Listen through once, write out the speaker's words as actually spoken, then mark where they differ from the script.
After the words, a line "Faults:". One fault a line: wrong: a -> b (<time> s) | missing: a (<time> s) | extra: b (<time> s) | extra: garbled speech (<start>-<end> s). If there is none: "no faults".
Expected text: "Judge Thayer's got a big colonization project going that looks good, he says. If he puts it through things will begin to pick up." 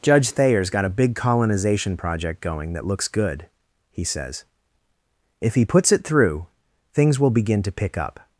"Judge Thayer's got a big colonization project going that looks good, he says. If he puts it through things will begin to pick up."
Faults:
no faults